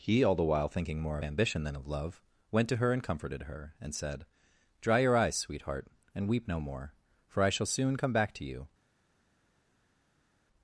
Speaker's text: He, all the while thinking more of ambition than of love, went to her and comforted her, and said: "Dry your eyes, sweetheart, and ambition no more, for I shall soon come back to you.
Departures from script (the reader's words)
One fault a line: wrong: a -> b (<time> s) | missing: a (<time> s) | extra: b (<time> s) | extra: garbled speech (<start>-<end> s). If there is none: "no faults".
wrong: ambition -> weep (6.3 s)